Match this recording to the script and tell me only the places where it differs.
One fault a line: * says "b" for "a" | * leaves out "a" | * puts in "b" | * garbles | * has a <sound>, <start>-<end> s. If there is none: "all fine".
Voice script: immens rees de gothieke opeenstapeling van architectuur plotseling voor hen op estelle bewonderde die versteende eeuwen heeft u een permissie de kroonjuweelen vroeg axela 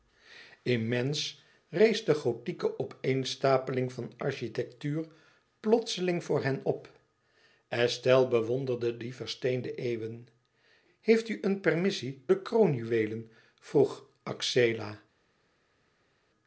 all fine